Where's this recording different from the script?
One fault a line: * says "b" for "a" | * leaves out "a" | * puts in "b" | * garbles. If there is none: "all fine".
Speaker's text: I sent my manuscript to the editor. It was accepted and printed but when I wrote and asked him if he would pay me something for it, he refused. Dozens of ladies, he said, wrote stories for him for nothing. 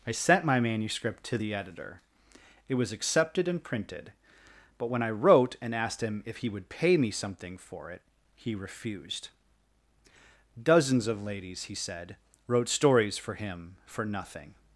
all fine